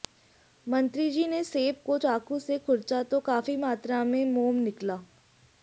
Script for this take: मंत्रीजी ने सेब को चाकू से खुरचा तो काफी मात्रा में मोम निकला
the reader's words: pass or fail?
pass